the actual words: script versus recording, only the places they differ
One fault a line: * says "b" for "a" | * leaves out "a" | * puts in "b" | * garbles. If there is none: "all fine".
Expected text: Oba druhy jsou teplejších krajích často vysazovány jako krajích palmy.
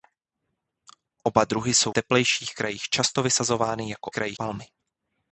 all fine